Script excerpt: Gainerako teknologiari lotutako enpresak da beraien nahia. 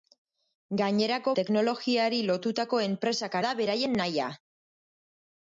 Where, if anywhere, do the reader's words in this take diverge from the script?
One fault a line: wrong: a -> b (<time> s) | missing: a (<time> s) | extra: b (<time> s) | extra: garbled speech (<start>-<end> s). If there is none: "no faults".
no faults